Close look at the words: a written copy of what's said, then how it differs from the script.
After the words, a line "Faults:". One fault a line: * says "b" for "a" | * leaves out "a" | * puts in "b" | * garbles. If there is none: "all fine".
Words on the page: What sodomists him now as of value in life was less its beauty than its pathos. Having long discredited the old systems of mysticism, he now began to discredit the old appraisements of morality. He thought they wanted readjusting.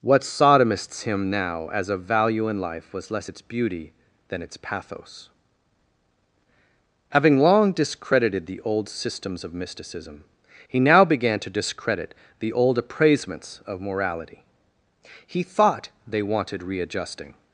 What sodomists him now as of value in life was less its beauty than its pathos. Having long discredited the old systems of mysticism, he now began to discredit the old appraisements of morality. He thought they wanted readjusting.
Faults:
all fine